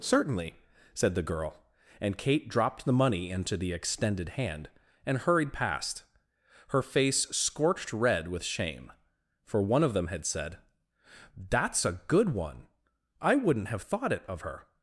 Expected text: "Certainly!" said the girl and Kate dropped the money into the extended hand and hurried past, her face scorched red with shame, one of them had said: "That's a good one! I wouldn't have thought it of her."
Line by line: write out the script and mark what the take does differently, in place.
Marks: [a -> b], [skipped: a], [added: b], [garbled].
"Certainly!" said the girl and Kate dropped the money into the extended hand and hurried past, her face scorched red with shame, [added: for] one of them had said: "That's a good one! I wouldn't have thought it of her."